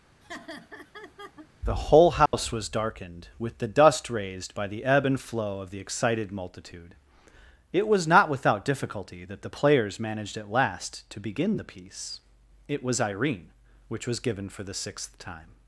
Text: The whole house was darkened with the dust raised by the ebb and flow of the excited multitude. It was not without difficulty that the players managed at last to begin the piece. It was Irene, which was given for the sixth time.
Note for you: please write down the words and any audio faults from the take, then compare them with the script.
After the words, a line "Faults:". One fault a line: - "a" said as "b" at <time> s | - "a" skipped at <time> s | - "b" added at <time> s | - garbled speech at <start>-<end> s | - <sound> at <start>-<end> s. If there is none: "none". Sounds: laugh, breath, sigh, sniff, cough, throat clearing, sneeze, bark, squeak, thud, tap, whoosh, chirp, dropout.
The whole house was darkened with the dust raised by the ebb and flow of the excited multitude. It was not without difficulty that the players managed at last to begin the piece. It was Irene, which was given for the sixth time.
Faults:
- laugh at 0.2-1.5 s
- dropout at 2.3-2.3 s